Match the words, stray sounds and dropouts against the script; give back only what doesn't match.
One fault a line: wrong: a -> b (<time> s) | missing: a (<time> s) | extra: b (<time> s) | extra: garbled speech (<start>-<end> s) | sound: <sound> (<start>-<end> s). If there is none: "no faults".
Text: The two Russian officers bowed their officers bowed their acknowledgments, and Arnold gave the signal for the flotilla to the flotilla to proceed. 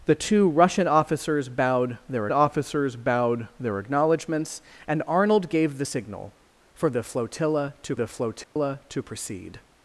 sound: dropout (8.4-8.6 s)